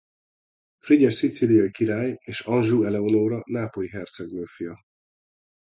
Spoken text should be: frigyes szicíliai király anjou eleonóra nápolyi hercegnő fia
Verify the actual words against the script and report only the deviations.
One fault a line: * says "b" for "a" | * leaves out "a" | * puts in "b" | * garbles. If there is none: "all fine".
* puts in "és"